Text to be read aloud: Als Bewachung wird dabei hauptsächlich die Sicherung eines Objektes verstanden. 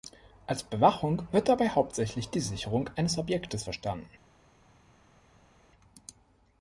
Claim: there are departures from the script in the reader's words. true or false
false